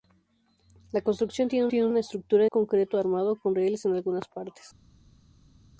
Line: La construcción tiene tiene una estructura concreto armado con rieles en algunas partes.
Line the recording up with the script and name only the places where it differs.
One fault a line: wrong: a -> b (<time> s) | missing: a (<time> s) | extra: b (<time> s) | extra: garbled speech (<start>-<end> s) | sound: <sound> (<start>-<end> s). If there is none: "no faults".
no faults